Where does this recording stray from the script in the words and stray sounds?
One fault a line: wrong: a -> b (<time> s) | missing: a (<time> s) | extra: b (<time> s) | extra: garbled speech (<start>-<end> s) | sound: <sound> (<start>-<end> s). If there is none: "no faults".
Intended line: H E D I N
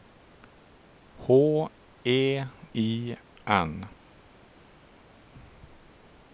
missing: D (2.4 s)